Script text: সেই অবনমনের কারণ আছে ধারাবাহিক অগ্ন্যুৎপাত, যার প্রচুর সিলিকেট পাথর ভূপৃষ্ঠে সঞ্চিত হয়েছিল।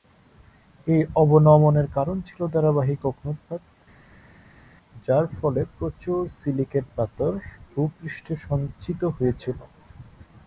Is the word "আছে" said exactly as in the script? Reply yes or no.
no